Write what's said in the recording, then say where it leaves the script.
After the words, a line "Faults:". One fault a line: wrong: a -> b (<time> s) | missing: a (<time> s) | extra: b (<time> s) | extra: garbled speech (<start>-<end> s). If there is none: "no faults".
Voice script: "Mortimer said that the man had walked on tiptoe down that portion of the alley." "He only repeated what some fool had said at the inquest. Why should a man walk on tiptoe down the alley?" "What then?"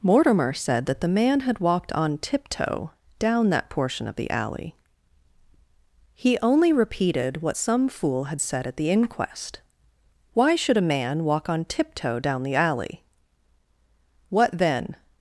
"Mortimer said that the man had walked on tiptoe down that portion of the alley." "He only repeated what some fool had said at the inquest. Why should a man walk on tiptoe down the alley?" "What then?"
Faults:
no faults